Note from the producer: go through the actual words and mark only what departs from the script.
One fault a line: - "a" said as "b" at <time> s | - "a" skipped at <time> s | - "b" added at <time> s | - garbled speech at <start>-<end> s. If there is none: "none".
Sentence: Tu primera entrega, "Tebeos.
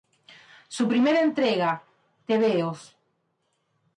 - "Tu" said as "Su" at 0.7 s